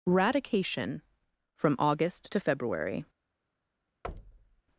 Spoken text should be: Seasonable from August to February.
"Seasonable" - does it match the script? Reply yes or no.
no